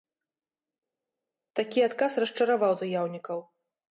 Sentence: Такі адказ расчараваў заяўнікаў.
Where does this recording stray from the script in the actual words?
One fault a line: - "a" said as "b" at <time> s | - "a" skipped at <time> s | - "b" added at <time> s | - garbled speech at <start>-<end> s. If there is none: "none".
none